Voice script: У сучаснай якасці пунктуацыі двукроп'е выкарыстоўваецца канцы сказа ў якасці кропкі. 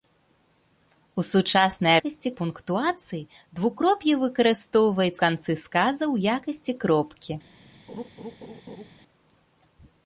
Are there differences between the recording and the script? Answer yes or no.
no